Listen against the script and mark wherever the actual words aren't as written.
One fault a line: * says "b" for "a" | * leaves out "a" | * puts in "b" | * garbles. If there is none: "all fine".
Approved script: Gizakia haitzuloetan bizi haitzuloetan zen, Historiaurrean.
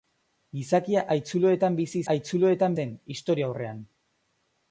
all fine